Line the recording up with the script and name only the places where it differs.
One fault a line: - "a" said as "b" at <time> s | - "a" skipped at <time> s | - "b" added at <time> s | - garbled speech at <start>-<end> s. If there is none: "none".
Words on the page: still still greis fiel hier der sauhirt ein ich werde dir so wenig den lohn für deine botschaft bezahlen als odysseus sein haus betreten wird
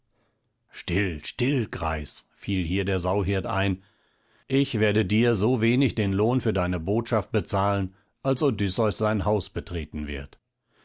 none